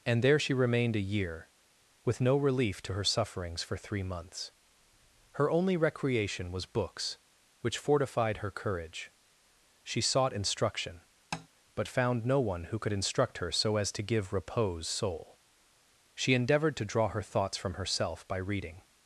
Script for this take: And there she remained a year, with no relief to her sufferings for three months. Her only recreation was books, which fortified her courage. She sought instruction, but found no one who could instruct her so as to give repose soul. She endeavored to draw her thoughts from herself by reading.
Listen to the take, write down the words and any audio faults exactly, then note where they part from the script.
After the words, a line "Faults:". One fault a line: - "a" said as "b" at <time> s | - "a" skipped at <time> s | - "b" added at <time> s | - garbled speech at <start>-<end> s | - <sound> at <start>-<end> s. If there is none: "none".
And there she remained a year, with no relief to her sufferings for three months. Her only recreation was books, which fortified her courage. She sought instruction, but found no one who could instruct her so as to give repose soul. She endeavored to draw her thoughts from herself by reading.
Faults:
- tap at 11.3-11.5 s